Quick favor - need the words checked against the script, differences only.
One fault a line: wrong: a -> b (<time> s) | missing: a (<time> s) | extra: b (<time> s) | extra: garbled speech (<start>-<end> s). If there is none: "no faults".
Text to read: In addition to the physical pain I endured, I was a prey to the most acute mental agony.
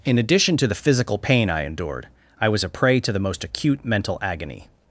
no faults